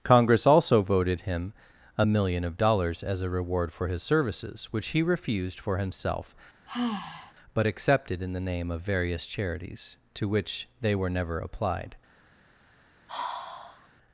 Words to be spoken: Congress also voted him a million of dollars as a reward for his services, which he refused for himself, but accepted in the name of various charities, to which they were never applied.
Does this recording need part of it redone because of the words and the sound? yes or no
yes